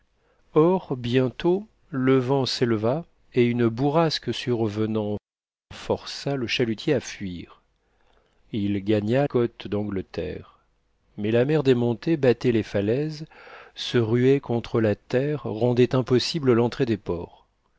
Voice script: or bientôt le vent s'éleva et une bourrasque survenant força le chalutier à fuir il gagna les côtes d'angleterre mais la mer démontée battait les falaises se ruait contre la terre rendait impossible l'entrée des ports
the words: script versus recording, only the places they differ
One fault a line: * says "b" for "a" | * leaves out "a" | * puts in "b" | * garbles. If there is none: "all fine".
* leaves out "les"